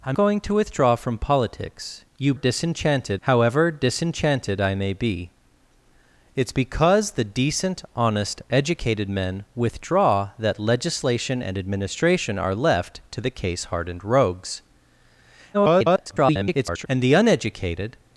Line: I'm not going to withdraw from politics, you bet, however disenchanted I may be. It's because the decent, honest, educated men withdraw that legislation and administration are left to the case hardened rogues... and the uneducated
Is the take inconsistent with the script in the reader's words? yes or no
yes